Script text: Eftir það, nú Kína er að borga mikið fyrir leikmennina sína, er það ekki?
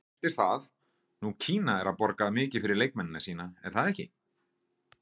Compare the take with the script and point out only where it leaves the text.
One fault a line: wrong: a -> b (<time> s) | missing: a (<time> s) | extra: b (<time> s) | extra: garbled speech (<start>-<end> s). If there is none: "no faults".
no faults